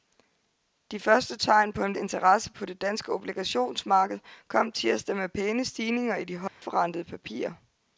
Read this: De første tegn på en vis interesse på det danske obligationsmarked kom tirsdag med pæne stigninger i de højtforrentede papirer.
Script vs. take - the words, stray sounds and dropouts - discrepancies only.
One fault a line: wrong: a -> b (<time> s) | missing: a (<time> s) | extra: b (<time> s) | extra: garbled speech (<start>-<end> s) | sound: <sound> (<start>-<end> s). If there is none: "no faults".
missing: vis (1.9 s)
sound: dropout (6.5-6.6 s)